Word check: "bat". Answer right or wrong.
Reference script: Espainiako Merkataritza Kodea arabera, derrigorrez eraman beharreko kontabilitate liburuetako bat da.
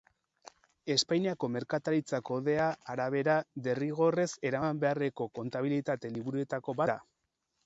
wrong